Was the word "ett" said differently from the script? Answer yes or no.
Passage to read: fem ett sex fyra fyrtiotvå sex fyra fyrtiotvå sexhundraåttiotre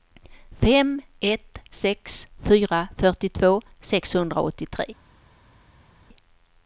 no